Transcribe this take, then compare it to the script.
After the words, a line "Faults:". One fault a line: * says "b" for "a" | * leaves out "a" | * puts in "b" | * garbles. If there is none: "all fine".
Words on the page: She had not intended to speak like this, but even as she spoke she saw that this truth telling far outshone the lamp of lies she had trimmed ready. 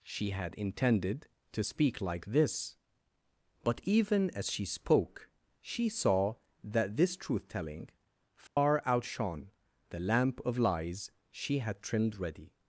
She had intended to speak like this, but even as she spoke she saw that this truth telling far outshone the lamp of lies she had trimmed ready.
Faults:
* leaves out "not"